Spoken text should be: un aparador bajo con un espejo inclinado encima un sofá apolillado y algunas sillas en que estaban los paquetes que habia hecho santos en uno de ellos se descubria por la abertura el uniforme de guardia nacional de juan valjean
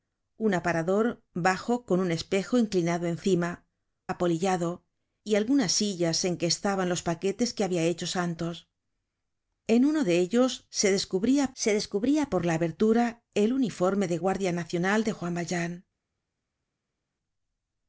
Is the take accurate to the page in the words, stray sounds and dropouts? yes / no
no